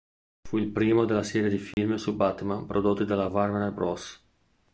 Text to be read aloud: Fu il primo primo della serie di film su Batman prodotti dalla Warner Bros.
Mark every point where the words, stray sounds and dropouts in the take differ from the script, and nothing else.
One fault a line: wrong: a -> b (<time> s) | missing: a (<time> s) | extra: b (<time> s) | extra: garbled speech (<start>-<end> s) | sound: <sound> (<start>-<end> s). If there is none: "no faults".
missing: primo (1.1 s)
sound: dropout (1.7-1.8 s)